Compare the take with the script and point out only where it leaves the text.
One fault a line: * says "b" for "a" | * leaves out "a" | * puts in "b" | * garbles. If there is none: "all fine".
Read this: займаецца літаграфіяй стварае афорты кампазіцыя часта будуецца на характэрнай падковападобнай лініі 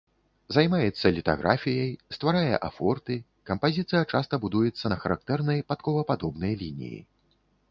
all fine